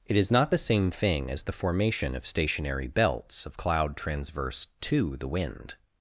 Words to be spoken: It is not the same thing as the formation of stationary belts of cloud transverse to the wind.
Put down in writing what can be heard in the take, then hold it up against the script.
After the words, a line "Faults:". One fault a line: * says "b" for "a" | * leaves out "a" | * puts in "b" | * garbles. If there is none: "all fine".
It is not the same thing as the formation of stationary belts of cloud transverse to the wind.
Faults:
all fine